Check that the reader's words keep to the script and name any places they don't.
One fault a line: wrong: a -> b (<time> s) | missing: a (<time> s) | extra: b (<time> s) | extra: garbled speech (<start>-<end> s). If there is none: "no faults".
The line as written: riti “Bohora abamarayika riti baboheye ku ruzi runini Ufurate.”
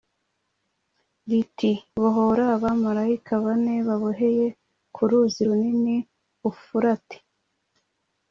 wrong: riti -> bane (3.4 s)